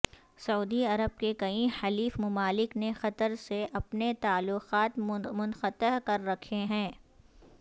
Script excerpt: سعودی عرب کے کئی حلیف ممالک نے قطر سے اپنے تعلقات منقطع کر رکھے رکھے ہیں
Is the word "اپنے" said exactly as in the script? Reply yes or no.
yes